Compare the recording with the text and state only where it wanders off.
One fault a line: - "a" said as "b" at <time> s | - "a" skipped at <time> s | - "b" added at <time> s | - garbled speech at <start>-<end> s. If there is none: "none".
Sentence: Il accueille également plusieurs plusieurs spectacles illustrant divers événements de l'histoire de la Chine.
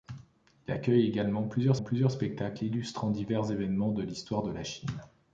none